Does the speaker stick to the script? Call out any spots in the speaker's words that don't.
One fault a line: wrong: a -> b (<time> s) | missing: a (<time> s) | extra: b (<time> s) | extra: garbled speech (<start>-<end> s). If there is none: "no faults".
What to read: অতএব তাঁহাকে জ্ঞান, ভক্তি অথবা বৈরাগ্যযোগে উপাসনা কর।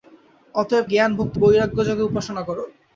missing: তাঁহাকে (0.8 s)
missing: অথবা (1.4 s)